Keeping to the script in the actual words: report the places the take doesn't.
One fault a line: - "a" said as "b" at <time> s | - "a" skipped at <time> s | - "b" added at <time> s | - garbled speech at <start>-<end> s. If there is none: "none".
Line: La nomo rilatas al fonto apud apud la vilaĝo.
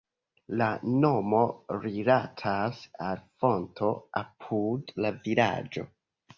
- "apud" skipped at 5.0 s